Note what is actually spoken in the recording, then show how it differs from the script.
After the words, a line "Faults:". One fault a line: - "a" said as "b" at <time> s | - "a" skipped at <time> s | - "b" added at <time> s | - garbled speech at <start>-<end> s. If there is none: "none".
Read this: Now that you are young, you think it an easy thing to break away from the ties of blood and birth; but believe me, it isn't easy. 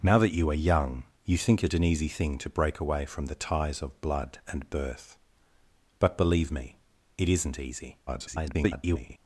Now that you are young, you think it an easy thing to break away from the ties of blood and birth; but believe me, it isn't easy. [garbled]
Faults:
- garbled speech at 8.1-9.2 s